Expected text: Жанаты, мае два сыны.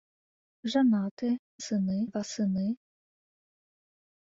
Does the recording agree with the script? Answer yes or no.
no